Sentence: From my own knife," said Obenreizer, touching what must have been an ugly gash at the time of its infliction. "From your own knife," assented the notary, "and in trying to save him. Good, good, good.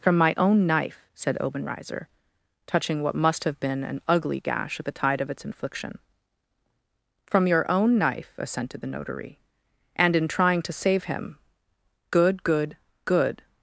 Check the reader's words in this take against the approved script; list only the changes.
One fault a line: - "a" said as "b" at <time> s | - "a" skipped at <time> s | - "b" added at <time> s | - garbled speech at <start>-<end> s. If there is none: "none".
- "time" said as "tide" at 4.9 s